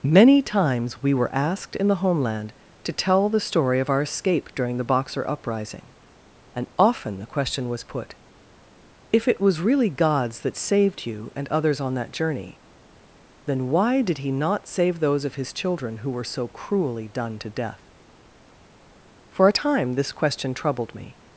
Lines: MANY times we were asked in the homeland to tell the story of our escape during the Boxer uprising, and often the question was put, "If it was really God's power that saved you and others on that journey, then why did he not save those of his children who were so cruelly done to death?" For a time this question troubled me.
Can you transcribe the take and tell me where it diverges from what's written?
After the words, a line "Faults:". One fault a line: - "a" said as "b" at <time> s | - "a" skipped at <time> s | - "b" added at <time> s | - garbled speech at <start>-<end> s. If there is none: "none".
MANY times we were asked in the homeland to tell the story of our escape during the Boxer uprising, and often the question was put, "If it was really God's that saved you and others on that journey, then why did he not save those of his children who were so cruelly done to death?" For a time this question troubled me.
Faults:
- "power" skipped at 10.4 s